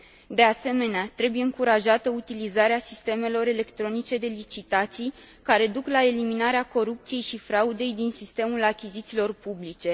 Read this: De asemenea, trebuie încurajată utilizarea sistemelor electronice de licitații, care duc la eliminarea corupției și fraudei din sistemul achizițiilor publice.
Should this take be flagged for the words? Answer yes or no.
no